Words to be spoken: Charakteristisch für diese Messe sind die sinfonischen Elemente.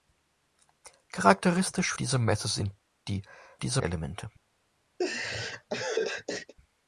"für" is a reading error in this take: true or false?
true